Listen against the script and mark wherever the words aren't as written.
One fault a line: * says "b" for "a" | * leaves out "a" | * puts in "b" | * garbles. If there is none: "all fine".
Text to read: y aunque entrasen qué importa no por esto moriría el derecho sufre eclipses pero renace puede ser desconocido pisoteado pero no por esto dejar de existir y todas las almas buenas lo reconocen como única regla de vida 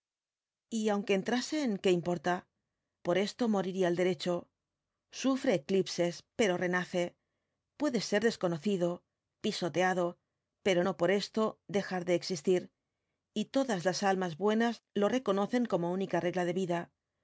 * leaves out "no"